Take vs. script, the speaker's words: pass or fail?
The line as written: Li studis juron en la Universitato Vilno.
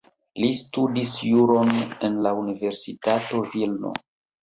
pass